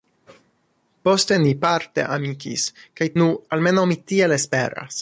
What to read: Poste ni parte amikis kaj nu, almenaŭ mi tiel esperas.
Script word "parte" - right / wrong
right